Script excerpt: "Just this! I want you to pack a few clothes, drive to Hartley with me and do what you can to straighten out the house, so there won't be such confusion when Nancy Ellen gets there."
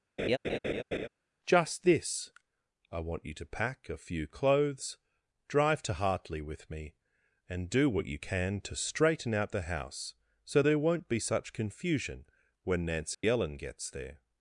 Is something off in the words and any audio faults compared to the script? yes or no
yes